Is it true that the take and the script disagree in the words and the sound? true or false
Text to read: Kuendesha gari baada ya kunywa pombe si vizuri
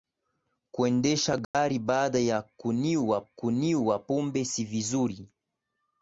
true